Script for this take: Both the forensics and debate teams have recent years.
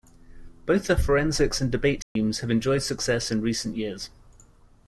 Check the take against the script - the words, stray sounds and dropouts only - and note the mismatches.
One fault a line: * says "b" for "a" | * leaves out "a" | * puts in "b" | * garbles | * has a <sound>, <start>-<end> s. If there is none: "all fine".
* has a dropout, 2.0-2.2 s
* puts in "enjoyed success in"